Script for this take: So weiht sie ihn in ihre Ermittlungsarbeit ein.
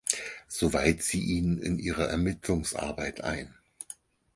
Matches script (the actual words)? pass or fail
pass